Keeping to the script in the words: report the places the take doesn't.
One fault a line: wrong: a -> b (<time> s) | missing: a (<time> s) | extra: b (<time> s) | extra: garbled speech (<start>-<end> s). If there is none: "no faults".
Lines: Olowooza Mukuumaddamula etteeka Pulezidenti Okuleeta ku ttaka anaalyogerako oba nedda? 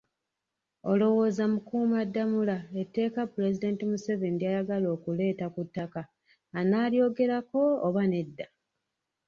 extra: Museveni ly'ayagala (3.9 s)